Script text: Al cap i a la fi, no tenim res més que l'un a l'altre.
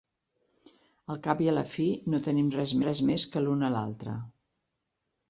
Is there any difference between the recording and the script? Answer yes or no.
yes